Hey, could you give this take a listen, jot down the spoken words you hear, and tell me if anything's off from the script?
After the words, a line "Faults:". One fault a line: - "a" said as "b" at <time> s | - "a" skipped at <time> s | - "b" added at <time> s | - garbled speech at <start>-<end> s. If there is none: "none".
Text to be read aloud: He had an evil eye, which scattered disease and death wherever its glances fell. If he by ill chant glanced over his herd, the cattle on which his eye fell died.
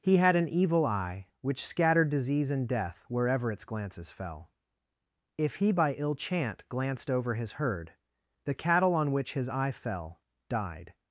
He had an evil eye, which scattered disease and death wherever its glances fell. If he by ill chant glanced over his herd, the cattle on which his eye fell died.
Faults:
none